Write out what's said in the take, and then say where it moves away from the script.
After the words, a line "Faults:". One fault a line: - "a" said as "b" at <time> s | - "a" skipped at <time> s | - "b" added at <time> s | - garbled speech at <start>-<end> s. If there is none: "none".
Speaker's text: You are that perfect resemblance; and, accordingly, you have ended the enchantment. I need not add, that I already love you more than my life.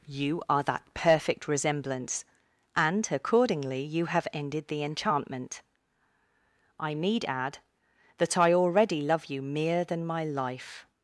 You are that perfect resemblance; and, accordingly, you have ended the enchantment. I need add, that I already love you mere than my life.
Faults:
- "not" skipped at 7.2 s
- "more" said as "mere" at 9.4 s